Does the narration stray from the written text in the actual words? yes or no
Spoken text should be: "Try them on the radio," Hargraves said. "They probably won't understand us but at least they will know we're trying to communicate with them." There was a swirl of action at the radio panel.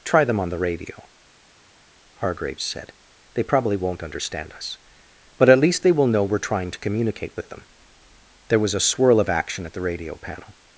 no